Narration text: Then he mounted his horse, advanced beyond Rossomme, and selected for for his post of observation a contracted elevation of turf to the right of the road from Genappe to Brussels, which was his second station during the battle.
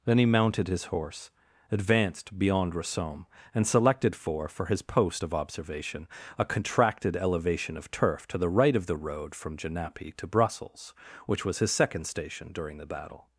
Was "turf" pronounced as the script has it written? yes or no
yes